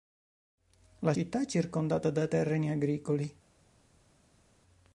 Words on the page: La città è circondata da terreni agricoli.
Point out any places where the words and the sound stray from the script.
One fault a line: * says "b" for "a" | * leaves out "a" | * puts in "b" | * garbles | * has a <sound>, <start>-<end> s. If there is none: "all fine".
all fine